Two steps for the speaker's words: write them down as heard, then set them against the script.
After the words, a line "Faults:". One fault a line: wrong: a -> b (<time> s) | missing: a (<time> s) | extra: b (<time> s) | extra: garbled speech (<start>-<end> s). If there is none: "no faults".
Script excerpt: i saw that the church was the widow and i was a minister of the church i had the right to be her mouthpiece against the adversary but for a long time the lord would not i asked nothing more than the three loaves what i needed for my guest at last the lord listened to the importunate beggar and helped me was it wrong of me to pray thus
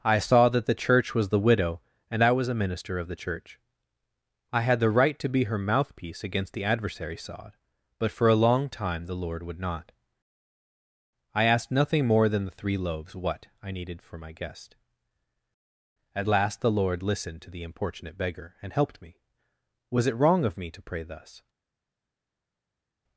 i saw that the church was the widow and i was a minister of the church i had the right to be her mouthpiece against the adversary sod but for a long time the lord would not i asked nothing more than the three loaves what i needed for my guest at last the lord listened to the importunate beggar and helped me was it wrong of me to pray thus
Faults:
extra: sod (7.2 s)